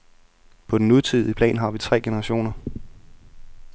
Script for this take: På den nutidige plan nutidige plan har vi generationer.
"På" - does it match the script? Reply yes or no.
yes